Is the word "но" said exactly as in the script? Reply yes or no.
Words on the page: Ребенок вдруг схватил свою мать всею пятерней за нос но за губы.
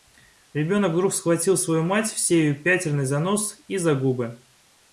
no